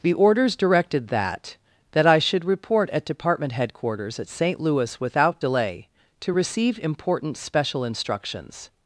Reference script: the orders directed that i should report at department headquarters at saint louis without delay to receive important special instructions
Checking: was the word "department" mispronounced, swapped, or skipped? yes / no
no